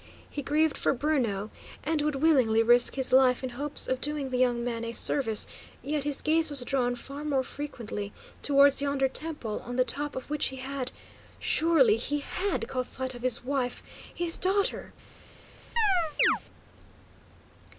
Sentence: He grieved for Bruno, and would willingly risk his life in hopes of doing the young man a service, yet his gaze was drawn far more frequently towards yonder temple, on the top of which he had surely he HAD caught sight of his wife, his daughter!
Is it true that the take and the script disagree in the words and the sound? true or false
true